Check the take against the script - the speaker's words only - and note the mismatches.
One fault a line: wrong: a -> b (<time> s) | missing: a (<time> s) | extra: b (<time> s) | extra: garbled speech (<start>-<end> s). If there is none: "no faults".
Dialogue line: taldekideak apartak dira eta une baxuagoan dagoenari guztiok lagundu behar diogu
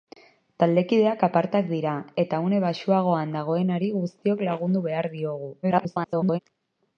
extra: garbled speech (5.6-6.4 s)